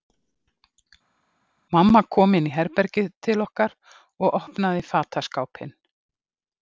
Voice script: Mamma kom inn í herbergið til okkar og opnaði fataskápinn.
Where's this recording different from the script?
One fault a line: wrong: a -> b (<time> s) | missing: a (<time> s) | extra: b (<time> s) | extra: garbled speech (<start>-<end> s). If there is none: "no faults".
no faults